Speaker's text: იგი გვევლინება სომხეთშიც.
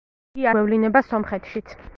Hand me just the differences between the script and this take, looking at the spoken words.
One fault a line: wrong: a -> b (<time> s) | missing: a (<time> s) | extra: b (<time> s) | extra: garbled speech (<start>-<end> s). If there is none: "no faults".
no faults